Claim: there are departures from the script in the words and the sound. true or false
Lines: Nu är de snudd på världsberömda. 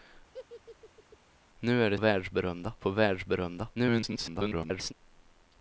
true